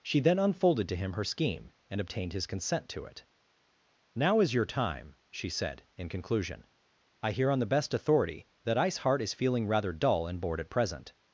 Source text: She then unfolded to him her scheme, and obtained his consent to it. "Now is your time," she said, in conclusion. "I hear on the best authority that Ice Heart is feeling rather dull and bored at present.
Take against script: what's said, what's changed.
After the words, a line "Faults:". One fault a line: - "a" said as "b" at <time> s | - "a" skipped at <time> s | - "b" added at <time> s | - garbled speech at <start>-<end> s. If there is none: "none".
She then unfolded to him her scheme, and obtained his consent to it. "Now is your time," she said, in conclusion. "I hear on the best authority that Ice Heart is feeling rather dull and bored at present.
Faults:
none